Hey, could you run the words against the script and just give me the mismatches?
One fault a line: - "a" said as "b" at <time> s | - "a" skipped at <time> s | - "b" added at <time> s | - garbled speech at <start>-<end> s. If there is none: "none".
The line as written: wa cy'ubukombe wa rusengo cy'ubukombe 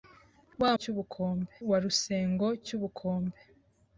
none